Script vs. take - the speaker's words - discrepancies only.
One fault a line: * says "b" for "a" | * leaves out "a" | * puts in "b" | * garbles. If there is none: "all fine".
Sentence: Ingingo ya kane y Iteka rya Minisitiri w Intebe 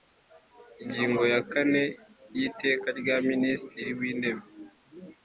all fine